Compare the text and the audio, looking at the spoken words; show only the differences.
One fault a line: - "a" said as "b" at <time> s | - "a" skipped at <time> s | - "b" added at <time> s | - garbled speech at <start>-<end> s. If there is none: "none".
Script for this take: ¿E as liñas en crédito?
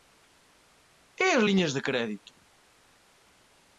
- "en" said as "de" at 1.7 s